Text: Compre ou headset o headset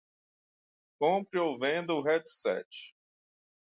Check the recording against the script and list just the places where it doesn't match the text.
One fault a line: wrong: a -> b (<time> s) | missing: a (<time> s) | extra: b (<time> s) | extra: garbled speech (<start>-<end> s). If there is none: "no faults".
wrong: headset -> venda (1.6 s)